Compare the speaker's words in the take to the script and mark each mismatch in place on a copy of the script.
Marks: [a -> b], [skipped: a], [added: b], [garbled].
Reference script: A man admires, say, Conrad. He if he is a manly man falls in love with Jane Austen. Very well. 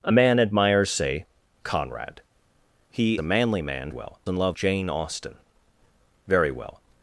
A man admires, say, Conrad. He [skipped: if he is] a manly man [falls -> well] in love [skipped: with] Jane Austen. Very well.